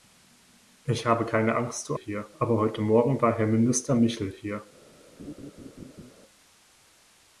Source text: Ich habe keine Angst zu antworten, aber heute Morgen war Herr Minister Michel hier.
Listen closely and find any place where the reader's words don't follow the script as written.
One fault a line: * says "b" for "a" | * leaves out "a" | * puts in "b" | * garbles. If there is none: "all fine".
* says "hier" for "antworten"